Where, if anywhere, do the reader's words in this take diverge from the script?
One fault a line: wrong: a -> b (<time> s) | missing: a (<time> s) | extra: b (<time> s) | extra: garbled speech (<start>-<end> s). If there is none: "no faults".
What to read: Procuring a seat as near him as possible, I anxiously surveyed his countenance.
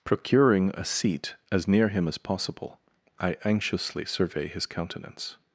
wrong: surveyed -> survey (4.0 s)